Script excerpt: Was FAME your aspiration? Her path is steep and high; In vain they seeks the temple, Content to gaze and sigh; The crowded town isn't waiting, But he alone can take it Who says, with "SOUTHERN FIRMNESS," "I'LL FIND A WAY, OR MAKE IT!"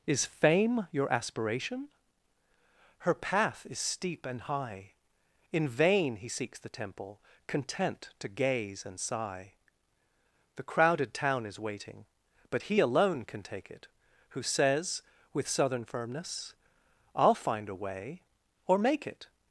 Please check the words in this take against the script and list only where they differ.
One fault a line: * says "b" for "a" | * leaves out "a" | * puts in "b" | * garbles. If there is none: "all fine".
* says "Is" for "Was"
* says "he" for "they"
* says "is" for "isn't"